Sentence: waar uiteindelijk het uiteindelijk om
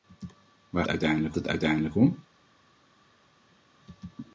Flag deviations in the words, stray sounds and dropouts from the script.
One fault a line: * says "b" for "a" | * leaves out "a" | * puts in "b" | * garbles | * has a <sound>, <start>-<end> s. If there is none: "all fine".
all fine